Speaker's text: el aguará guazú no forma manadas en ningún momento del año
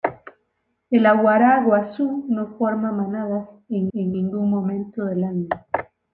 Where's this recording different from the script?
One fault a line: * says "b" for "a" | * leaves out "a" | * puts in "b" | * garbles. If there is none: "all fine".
* puts in "en"